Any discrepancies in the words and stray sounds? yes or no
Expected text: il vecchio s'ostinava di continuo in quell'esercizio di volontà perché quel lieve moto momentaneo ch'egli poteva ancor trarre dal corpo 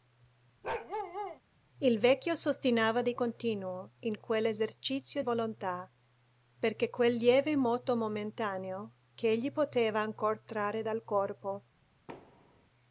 yes